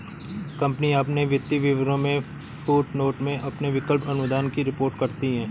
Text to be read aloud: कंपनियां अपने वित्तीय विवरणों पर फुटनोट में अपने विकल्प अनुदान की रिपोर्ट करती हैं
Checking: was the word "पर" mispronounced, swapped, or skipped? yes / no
yes